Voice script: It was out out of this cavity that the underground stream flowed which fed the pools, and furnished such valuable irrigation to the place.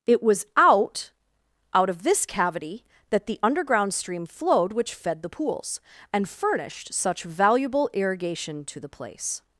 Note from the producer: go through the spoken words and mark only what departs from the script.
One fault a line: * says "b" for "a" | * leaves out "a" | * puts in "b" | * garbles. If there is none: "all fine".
all fine